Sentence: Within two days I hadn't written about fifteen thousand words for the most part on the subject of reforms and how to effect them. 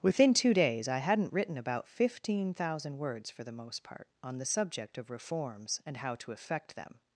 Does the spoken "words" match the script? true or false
true